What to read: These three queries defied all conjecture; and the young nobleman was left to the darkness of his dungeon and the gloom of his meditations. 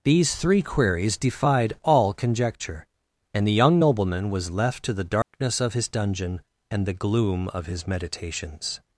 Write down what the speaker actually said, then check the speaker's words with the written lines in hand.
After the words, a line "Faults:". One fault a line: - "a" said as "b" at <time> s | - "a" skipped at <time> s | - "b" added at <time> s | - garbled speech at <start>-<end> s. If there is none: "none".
These three queries defied all conjecture; and the young nobleman was left to the darkness of his dungeon and the gloom of his meditations.
Faults:
none